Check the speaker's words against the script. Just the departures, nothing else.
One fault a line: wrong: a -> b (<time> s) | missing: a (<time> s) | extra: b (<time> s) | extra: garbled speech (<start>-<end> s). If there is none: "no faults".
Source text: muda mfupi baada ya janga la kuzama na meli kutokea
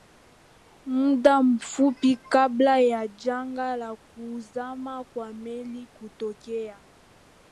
wrong: baada -> kabla (2.2 s)
wrong: na -> kwa (5.0 s)